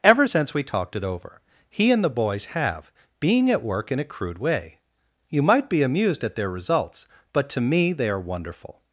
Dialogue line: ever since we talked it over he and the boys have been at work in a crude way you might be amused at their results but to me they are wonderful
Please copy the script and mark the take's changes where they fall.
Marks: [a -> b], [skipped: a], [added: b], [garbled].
ever since we talked it over he and the boys have [been -> being] at work in a crude way you might be amused at their results but to me they are wonderful